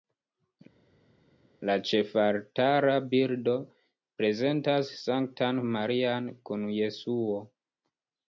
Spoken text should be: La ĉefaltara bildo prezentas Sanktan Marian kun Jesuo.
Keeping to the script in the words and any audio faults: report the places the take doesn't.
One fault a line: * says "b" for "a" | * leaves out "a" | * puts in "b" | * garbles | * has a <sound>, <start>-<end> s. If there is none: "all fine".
all fine